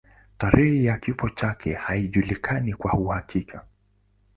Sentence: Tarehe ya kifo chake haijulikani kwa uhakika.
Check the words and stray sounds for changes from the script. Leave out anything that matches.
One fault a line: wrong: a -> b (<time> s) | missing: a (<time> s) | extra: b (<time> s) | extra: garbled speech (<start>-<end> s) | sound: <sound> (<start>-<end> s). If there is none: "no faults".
no faults